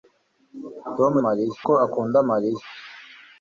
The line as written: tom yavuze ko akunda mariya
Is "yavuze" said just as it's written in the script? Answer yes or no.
no